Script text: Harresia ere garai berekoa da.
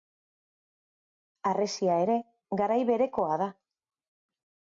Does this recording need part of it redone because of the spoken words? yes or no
no